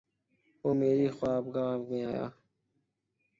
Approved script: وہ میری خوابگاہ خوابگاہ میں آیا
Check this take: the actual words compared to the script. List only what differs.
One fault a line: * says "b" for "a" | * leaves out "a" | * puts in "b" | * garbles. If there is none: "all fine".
* leaves out "خوابگاہ"